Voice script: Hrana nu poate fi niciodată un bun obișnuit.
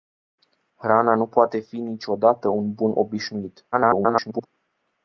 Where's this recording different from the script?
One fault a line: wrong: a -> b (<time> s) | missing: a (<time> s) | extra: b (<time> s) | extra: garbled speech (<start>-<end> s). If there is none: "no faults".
extra: garbled speech (3.7-4.5 s)